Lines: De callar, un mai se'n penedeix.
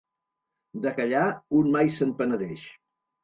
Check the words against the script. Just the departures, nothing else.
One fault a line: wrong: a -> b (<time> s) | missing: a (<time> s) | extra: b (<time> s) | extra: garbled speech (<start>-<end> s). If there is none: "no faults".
no faults